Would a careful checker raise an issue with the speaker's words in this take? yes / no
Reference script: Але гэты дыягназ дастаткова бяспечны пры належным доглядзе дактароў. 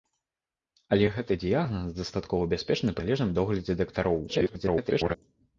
yes